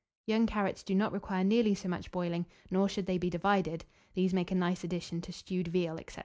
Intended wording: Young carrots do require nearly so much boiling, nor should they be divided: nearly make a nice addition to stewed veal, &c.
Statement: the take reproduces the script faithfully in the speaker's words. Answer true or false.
false